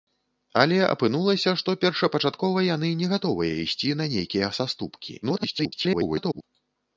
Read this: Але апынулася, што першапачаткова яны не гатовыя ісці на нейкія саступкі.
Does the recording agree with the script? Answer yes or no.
no